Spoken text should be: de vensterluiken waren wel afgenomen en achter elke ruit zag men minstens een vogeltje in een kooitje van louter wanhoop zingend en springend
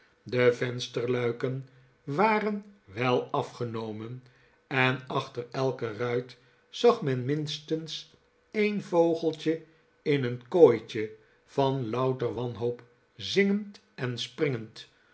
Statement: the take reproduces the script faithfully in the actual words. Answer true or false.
true